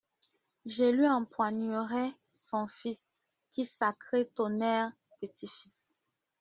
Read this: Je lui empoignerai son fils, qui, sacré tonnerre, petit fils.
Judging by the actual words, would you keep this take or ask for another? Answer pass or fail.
pass